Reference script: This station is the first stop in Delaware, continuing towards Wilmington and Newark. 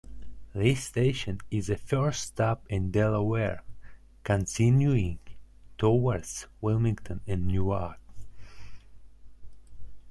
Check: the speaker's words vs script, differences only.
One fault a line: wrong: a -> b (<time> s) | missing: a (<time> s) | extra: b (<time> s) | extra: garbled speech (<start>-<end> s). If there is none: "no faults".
no faults